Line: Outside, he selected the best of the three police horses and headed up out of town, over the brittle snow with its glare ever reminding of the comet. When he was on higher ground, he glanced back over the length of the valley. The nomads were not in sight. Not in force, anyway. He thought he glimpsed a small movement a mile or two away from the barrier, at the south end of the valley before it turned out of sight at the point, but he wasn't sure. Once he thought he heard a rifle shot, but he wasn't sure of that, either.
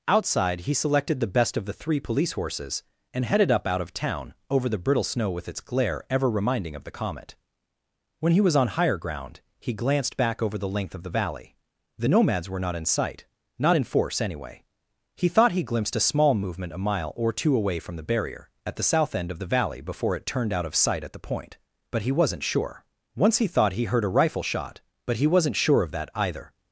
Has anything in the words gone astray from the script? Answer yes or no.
no